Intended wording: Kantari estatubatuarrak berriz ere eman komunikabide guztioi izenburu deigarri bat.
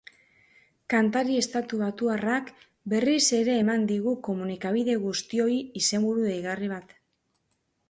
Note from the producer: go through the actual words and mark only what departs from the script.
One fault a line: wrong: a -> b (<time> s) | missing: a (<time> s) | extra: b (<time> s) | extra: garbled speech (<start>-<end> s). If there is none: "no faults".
extra: digu (3.9 s)